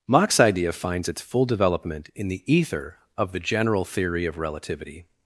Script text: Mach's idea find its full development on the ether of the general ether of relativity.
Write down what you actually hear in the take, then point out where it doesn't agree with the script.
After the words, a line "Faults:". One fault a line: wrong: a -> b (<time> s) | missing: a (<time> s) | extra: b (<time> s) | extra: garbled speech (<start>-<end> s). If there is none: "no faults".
Mach's idea finds its full development in the ether of the general theory of relativity.
Faults:
wrong: find -> finds (0.7 s)
wrong: on -> in (2.1 s)
wrong: ether -> theory (3.9 s)